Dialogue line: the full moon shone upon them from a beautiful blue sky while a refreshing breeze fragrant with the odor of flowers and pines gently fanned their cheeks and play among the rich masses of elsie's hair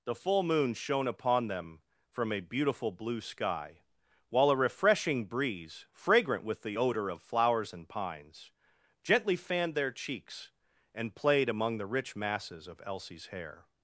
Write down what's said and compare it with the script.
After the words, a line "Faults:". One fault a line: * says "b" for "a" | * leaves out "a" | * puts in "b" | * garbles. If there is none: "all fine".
the full moon shone upon them from a beautiful blue sky while a refreshing breeze fragrant with the odor of flowers and pines gently fanned their cheeks and played among the rich masses of elsie's hair
Faults:
* says "played" for "play"